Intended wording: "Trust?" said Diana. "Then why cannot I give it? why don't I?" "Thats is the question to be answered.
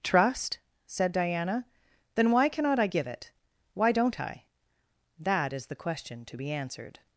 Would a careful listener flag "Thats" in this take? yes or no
yes